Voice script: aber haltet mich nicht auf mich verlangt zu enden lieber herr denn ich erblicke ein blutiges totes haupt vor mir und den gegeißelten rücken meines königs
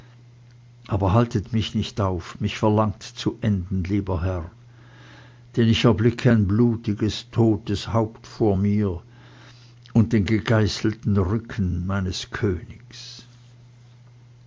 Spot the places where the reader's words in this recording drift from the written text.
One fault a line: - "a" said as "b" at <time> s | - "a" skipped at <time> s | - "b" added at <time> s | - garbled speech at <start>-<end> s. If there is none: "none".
none